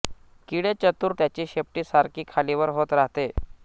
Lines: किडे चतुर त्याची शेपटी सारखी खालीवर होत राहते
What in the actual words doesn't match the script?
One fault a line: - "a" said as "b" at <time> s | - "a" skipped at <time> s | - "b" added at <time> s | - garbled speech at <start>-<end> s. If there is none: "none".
none